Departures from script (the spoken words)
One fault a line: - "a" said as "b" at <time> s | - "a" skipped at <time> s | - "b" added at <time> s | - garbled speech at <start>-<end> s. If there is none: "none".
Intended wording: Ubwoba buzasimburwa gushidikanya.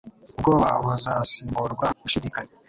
none